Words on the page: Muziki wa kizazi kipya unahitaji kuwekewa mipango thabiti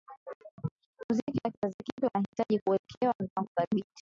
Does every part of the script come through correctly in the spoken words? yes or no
yes